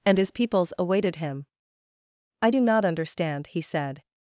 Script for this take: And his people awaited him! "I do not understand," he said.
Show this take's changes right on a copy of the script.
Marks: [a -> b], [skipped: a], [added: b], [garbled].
And his [people -> peoples] awaited him! "I do not understand," he said.